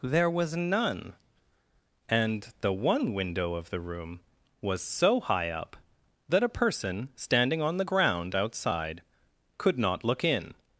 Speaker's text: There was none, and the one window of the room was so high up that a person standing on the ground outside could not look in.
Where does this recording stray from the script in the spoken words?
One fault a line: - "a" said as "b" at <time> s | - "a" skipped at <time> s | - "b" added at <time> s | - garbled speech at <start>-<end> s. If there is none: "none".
none